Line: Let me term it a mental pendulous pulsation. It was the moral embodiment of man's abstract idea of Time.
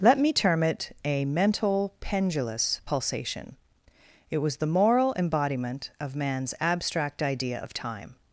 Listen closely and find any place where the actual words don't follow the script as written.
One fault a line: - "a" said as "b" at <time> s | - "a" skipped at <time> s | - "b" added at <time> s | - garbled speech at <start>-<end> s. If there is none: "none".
none